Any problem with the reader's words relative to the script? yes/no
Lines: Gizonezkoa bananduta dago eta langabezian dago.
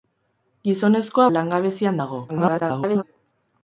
yes